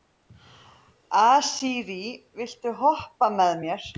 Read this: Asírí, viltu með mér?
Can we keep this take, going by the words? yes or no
no